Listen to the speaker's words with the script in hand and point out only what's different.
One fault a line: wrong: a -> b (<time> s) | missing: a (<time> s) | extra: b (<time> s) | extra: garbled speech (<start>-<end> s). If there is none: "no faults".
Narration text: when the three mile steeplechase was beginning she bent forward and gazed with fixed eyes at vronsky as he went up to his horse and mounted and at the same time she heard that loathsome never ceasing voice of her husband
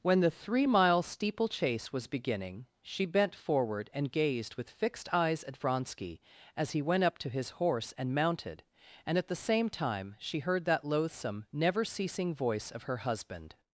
no faults